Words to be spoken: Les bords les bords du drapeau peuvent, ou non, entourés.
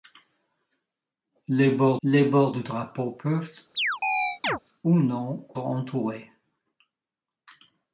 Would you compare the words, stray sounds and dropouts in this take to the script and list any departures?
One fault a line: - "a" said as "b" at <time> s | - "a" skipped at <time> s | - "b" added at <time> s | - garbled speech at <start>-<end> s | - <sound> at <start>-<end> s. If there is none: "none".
- chirp at 3.7-4.6 s